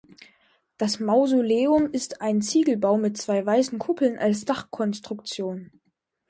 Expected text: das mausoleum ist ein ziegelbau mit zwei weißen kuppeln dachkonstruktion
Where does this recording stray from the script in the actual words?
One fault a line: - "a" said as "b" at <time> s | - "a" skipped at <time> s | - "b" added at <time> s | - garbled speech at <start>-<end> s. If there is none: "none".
- "als" added at 4.2 s